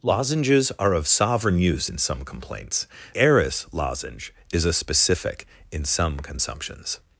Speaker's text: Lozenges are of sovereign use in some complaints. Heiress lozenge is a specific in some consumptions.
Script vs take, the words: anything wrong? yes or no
no